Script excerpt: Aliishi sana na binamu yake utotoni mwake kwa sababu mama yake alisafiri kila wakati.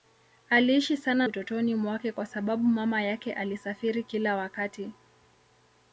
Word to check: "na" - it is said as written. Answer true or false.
false